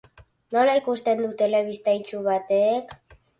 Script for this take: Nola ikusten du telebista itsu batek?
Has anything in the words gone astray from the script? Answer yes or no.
no